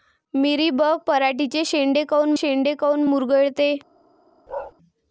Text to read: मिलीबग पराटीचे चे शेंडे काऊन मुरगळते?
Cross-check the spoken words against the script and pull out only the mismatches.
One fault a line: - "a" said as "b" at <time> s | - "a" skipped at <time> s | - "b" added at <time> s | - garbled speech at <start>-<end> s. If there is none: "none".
- "शेंडे काऊन" added at 2.3 s